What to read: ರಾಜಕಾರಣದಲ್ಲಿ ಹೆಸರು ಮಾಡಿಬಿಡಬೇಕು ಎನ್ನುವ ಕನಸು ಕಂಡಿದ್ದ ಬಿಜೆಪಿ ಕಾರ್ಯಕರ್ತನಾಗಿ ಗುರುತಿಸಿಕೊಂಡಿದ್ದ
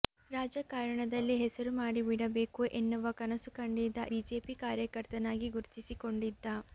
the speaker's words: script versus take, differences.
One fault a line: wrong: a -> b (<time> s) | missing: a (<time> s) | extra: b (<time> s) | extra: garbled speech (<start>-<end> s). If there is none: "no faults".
no faults